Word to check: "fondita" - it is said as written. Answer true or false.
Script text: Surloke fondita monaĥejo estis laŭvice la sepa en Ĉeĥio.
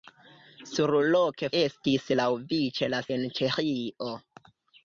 false